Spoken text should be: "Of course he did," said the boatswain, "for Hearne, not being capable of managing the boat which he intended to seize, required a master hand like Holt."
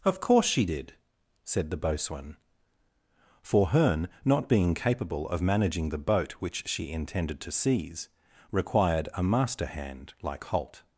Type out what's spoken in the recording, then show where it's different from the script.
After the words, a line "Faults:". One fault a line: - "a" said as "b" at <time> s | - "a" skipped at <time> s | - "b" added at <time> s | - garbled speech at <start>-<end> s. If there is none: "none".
"Of course she did," said the boatswain, "for Hearne, not being capable of managing the boat which she intended to seize, required a master hand like Holt."
Faults:
- "he" said as "she" at 0.5 s
- "he" said as "she" at 6.7 s